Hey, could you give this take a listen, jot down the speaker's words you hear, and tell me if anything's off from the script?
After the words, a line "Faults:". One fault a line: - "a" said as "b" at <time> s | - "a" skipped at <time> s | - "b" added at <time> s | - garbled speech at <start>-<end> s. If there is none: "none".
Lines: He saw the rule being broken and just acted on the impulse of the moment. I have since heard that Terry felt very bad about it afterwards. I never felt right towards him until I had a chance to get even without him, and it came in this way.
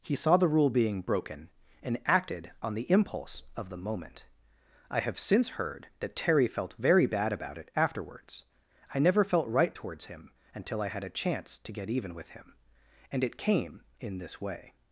He saw the rule being broken and acted on the impulse of the moment. I have since heard that Terry felt very bad about it afterwards. I never felt right towards him until I had a chance to get even with him, and it came in this way.
Faults:
- "just" skipped at 2.0 s
- "without" said as "with" at 12.1 s